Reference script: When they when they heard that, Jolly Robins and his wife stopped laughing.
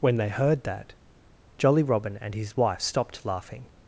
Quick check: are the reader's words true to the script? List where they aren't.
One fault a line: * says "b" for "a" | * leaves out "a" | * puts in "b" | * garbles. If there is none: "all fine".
* leaves out "when they"
* says "Robin" for "Robins"